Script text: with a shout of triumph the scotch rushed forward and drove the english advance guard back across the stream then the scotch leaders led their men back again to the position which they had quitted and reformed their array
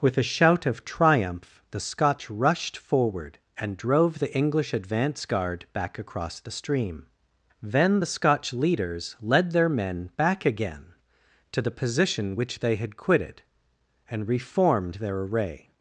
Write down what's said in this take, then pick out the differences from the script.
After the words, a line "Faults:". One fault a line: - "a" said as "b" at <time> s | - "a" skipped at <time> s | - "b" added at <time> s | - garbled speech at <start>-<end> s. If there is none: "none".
with a shout of triumph the scotch rushed forward and drove the english advance guard back across the stream then the scotch leaders led their men back again to the position which they had quitted and reformed their array
Faults:
none